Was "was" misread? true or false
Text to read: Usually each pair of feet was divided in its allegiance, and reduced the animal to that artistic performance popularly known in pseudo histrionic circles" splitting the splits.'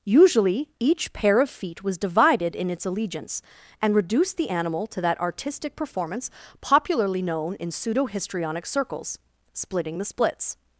false